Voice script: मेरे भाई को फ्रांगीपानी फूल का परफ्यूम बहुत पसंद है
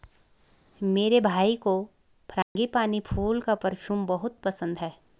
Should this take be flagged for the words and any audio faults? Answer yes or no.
yes